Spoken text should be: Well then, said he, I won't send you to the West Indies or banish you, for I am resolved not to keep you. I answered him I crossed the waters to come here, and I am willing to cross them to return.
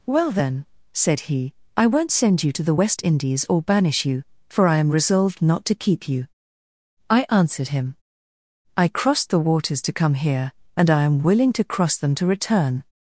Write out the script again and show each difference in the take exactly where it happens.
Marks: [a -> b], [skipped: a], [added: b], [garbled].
Well then, said he, I won't send you to the West Indies or banish you, for I am resolved not to keep you. I answered him I crossed the waters to come here, and I am willing to cross them to return.